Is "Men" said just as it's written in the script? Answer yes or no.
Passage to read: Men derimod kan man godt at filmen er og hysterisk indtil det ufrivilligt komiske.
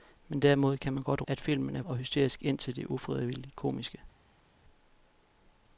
yes